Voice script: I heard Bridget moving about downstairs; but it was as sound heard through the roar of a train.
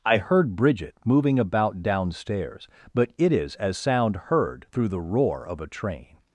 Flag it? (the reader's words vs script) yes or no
yes